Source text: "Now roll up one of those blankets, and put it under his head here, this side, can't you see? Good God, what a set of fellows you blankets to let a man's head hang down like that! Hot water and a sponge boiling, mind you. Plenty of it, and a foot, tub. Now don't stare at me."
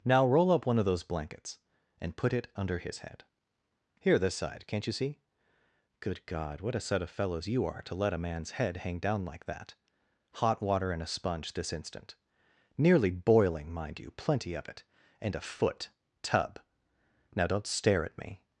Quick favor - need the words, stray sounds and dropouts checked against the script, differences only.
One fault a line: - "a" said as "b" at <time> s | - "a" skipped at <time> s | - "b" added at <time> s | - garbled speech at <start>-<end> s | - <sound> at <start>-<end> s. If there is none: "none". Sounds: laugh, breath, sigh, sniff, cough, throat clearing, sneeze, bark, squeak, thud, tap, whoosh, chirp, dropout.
- "blankets" said as "are" at 7.7 s
- "this instant Nearly" added at 11.5 s